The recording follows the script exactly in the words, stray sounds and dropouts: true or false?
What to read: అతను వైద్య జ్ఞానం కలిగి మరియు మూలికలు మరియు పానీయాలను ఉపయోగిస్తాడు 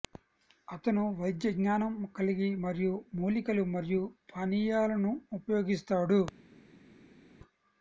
true